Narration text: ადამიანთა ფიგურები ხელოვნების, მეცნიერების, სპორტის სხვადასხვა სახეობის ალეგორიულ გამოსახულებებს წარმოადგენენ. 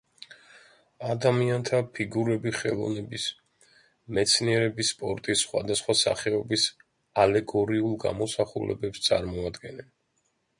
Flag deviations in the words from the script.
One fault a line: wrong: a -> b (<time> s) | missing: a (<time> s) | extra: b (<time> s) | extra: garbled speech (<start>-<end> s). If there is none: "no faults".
no faults